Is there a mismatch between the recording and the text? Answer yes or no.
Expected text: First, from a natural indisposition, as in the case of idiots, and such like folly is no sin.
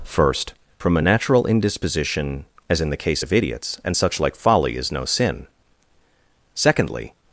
yes